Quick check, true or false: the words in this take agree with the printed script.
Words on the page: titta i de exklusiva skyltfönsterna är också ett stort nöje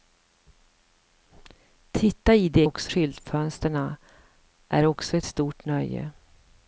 false